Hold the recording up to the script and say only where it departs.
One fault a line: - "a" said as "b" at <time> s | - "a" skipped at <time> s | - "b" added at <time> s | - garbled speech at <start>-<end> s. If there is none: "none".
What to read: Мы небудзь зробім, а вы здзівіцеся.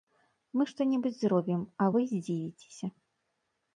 - "што" added at 0.7 s